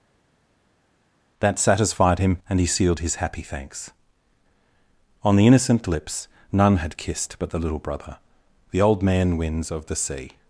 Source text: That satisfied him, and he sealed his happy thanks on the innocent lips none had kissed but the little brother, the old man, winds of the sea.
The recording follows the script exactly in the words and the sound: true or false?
true